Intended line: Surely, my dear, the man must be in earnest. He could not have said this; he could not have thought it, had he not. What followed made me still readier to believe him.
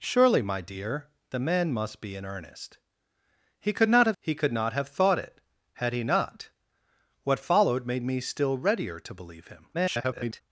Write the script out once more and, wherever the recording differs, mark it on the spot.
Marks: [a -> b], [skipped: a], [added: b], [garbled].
Surely, my dear, the man must be in earnest. He could not have [skipped: said this;] he could not have thought it, had he not. What followed made me still readier to believe him. [garbled]